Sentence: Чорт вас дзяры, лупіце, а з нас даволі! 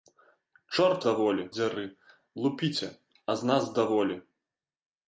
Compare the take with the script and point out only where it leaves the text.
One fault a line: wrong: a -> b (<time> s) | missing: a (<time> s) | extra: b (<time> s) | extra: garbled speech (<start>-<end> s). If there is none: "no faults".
wrong: вас -> даволі (1.1 s)